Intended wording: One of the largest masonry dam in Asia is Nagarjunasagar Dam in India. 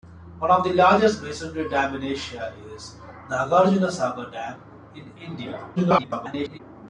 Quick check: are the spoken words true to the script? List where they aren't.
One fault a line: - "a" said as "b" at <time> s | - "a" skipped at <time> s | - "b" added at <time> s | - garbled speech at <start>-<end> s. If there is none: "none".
- garbled speech at 5.8-6.6 s